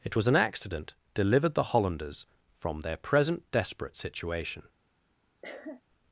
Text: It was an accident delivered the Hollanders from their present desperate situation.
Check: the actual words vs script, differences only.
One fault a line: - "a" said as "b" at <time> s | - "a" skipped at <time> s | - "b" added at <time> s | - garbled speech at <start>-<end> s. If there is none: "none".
none